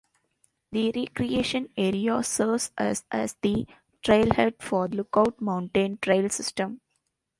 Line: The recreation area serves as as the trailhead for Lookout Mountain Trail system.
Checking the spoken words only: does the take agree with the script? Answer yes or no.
yes